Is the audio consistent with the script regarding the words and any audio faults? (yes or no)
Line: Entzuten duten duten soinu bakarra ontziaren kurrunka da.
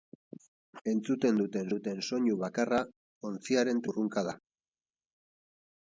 yes